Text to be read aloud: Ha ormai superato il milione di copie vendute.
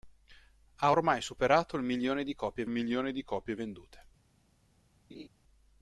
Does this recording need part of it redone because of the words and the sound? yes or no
yes